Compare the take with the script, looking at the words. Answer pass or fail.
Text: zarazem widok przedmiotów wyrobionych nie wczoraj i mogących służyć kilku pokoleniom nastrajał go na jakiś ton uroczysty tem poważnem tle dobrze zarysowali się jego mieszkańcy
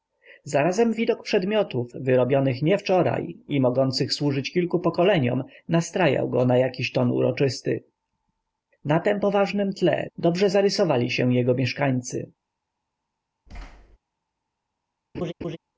fail